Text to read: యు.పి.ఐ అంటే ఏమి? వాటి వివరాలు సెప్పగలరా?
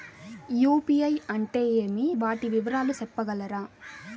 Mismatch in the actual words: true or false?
false